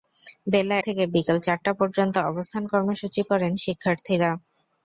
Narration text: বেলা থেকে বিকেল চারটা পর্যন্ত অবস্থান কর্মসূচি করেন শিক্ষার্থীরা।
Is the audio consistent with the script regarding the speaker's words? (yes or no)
yes